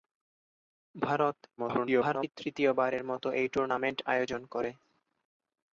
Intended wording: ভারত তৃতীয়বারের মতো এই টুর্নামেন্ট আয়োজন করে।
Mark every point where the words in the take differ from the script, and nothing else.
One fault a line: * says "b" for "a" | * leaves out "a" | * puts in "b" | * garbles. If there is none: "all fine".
* garbles